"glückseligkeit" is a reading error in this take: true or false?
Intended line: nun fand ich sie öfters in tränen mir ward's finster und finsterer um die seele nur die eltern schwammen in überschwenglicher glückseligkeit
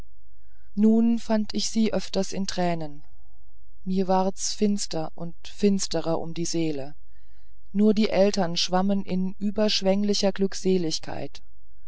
false